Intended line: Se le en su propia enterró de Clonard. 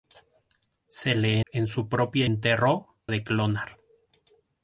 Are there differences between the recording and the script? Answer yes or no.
no